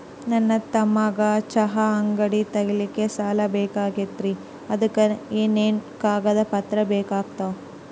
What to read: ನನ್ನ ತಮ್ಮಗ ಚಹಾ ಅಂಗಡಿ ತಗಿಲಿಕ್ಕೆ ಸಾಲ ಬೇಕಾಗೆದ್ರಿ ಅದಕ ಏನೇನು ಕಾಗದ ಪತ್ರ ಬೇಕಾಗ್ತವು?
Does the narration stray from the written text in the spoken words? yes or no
no